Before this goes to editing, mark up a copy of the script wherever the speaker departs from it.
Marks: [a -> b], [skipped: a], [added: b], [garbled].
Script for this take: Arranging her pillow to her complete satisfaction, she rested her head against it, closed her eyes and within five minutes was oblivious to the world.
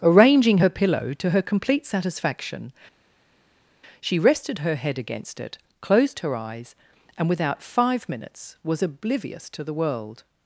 Arranging her pillow to her complete satisfaction, she rested her head against it, closed her eyes and [within -> without] five minutes was oblivious to the world.